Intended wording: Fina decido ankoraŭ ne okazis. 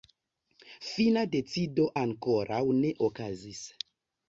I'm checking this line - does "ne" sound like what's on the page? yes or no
yes